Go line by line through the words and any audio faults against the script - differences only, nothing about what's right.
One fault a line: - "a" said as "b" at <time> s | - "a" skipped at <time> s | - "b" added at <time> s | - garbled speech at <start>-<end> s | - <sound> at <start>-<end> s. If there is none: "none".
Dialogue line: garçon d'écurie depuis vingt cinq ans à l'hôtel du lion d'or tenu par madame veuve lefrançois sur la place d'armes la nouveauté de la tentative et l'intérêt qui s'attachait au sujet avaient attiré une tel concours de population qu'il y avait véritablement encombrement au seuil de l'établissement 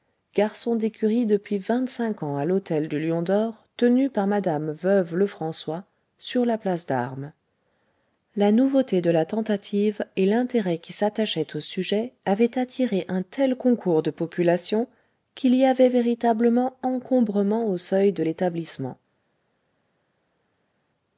- "une" said as "un" at 13.1 s